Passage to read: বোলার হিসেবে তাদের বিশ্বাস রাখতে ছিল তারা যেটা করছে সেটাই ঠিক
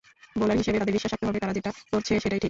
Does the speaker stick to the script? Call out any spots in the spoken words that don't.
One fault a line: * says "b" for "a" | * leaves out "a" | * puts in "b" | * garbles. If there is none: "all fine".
* says "হবে" for "ছিল"